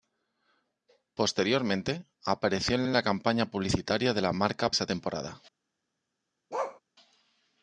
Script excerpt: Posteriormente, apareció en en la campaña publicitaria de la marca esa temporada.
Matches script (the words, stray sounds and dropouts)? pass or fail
fail